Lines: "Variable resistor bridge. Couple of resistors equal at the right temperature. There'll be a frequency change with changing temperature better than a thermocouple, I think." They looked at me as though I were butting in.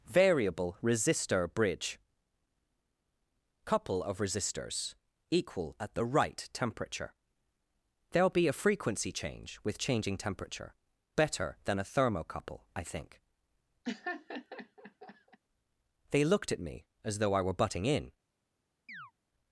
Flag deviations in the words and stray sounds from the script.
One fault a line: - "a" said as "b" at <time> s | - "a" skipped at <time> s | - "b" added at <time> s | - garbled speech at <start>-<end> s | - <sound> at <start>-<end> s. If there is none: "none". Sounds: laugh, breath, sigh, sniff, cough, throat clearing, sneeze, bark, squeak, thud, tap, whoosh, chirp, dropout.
- laugh at 13.8-15.4 s
- chirp at 18.9-19.1 s